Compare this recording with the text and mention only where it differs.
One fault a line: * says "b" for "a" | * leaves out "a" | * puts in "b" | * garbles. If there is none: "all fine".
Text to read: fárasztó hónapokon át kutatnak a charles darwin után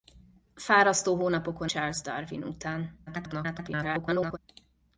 * leaves out "át kutatnak a"
* garbles